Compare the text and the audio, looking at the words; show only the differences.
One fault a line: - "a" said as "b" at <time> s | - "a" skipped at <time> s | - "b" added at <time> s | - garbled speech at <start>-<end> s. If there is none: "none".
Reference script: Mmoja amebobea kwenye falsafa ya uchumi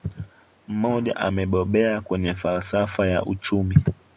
none